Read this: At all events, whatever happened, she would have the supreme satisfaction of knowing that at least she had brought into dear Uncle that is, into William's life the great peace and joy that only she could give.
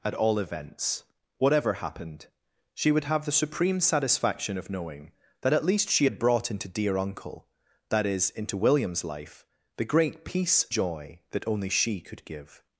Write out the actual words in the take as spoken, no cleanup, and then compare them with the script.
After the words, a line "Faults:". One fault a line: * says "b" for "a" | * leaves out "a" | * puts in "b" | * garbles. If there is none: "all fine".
At all events, whatever happened, she would have the supreme satisfaction of knowing that at least she had brought into dear Uncle that is, into William's life the great peace joy that only she could give.
Faults:
* leaves out "and"